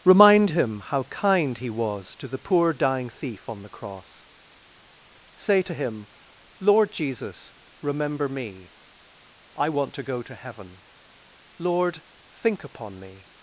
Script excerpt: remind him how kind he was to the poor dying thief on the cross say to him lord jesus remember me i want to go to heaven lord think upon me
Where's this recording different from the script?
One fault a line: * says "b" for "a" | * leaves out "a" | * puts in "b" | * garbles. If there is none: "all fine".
all fine